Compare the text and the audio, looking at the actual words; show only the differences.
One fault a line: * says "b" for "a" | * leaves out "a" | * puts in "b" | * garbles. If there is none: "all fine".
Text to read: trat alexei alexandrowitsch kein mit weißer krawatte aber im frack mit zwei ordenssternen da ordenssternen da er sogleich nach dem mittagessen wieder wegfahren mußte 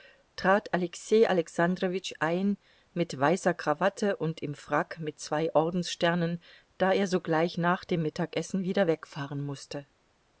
* says "ein" for "kein"
* says "und" for "aber"
* leaves out "ordenssternen da"